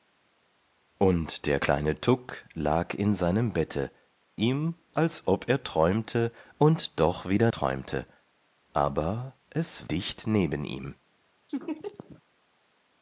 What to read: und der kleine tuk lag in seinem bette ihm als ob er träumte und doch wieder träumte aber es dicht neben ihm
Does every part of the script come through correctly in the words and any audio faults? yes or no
no